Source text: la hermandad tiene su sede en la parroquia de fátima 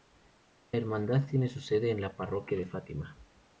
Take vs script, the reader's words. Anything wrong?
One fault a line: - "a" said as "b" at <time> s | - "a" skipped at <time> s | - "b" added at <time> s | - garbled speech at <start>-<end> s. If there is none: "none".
none